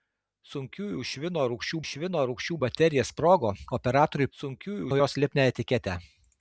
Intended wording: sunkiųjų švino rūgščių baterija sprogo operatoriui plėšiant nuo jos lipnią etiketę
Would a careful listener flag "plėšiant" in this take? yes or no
yes